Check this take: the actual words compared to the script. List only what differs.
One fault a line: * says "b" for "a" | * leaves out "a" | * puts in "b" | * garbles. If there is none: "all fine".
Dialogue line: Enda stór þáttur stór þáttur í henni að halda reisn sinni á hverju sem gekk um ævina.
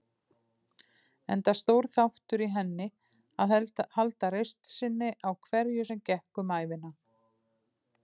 * leaves out "stór þáttur"